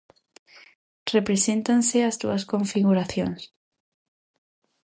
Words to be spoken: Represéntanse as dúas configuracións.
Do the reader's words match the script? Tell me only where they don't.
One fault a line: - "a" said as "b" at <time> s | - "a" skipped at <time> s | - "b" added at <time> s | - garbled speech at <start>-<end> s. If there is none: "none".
none